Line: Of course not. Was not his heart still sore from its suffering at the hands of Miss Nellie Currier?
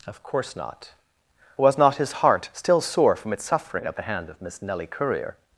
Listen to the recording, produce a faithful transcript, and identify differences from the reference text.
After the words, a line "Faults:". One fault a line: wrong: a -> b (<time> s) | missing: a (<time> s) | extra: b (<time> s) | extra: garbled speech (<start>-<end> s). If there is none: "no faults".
Of course not. Was not his heart still sore from its suffering at the hand of Miss Nellie Currier?
Faults:
wrong: hands -> hand (4.0 s)